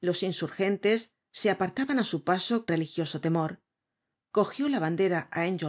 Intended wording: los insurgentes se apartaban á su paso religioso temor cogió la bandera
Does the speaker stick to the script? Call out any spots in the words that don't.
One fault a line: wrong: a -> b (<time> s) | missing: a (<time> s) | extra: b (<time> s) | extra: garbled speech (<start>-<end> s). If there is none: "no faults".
no faults